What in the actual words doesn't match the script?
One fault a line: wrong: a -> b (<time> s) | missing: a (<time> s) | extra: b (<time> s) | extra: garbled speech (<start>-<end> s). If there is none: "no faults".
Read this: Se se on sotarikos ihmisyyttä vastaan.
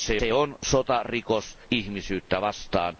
no faults